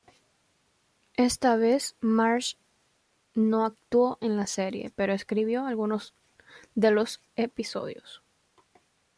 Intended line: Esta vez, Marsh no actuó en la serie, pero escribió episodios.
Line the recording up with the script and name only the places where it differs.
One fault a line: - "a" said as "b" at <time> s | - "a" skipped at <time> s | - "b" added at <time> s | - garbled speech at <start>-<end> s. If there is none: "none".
- "algunos de los" added at 5.7 s